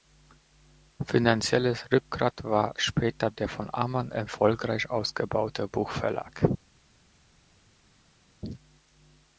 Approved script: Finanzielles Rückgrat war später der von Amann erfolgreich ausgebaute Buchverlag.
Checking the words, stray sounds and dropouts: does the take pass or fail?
pass